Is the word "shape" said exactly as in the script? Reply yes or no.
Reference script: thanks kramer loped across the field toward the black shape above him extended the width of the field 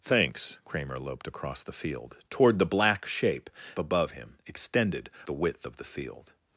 yes